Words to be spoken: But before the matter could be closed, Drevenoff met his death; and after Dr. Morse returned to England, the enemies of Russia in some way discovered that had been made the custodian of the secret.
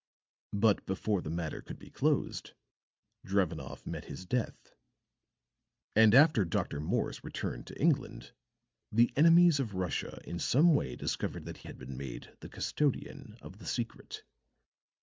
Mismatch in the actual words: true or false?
false